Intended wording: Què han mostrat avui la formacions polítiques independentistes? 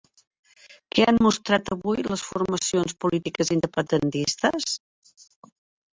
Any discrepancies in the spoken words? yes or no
yes